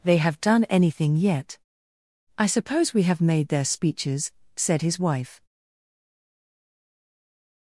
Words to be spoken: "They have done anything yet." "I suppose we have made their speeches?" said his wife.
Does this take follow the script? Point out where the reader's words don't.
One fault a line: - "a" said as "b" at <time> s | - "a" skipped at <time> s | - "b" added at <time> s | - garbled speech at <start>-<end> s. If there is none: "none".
none